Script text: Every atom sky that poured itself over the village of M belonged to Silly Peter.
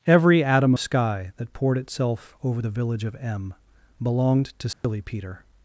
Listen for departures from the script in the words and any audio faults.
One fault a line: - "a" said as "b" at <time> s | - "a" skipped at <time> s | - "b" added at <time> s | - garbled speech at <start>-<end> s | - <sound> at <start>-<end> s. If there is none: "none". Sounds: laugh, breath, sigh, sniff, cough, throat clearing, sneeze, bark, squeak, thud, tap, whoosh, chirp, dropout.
- dropout at 4.7-4.8 s